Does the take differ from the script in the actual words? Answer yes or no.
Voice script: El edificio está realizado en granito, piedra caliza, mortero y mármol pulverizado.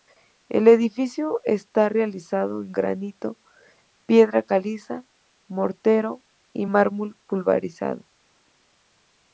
no